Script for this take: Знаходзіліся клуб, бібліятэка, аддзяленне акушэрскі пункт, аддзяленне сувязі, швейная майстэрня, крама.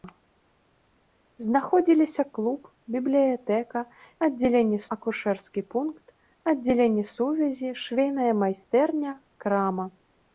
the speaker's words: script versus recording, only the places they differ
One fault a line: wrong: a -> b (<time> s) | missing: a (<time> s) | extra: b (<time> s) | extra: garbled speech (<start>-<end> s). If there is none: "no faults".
no faults